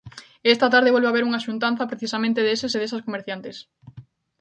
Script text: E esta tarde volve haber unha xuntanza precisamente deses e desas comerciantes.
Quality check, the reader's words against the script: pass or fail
pass